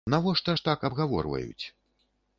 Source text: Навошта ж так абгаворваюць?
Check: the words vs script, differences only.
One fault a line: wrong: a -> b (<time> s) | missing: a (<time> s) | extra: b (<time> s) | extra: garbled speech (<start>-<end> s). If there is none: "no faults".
no faults